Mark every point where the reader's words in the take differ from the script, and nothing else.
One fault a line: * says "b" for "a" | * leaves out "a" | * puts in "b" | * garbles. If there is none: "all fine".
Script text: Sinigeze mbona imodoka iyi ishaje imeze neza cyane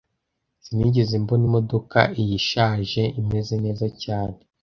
all fine